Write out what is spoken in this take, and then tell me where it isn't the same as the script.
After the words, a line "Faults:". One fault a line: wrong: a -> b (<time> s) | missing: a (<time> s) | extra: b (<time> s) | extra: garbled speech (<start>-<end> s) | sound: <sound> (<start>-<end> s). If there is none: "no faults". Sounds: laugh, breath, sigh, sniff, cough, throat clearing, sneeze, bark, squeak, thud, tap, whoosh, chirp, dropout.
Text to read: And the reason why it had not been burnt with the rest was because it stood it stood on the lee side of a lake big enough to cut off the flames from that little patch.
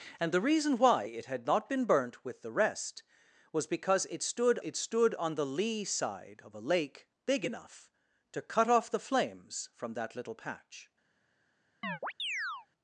And the reason why it had not been burnt with the rest was because it stood it stood on the lee side of a lake big enough to cut off the flames from that little patch.
Faults:
sound: chirp (11.8-12.7 s)